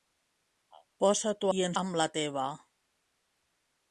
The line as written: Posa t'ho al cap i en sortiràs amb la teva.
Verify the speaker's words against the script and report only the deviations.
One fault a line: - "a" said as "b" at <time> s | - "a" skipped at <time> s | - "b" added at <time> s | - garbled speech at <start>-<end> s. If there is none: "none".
- "al cap" skipped at 1.5 s
- "sortiràs" skipped at 1.8 s